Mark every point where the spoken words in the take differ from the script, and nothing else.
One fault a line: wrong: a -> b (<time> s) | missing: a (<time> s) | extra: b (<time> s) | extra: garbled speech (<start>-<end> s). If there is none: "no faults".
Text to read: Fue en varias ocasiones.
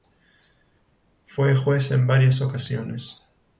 extra: juez (1.6 s)